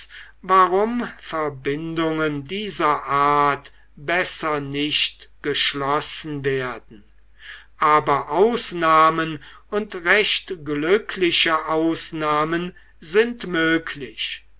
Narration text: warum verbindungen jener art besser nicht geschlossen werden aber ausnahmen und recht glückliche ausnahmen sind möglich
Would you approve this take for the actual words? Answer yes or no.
no